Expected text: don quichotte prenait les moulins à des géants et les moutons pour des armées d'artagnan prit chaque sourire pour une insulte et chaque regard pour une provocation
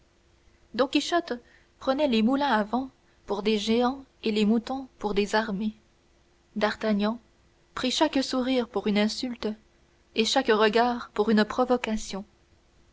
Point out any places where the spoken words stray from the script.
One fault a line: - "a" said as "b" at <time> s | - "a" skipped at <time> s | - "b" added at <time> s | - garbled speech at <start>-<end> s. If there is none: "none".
- "vent pour" added at 2.6 s